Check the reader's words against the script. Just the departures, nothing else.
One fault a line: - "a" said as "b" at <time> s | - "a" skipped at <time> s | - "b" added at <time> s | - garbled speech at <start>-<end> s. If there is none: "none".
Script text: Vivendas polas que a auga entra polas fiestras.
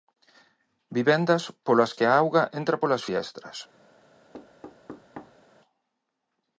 none